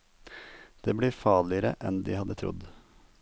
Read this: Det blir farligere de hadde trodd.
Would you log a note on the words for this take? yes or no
yes